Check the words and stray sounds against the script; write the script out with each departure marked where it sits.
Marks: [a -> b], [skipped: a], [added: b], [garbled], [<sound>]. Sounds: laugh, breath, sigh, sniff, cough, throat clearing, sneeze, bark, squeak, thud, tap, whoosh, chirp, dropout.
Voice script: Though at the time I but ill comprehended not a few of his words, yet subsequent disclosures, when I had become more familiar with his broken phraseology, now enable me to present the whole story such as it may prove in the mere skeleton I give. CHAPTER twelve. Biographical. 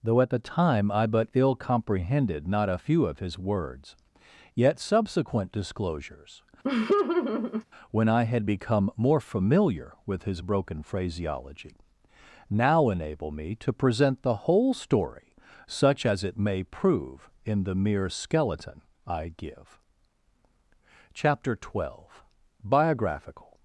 Though at the time I but ill comprehended not a few of his words, yet subsequent disclosures, [laugh] when I had become more familiar with his broken phraseology, now enable me to present the whole story such as it may prove in the mere skeleton I give. CHAPTER twelve. Biographical.